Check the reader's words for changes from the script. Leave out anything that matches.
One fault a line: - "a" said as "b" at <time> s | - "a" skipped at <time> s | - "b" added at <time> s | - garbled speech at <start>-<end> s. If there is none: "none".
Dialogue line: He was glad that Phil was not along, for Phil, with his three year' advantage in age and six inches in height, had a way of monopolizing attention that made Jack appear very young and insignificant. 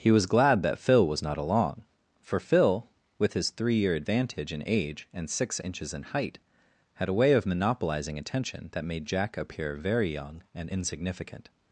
none